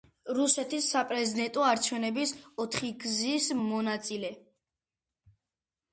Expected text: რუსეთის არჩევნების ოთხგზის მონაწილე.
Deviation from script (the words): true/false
true